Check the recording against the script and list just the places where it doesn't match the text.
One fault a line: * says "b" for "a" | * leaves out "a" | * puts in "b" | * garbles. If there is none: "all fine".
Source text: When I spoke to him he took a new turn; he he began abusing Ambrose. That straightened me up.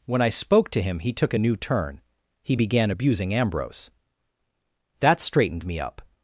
* leaves out "he"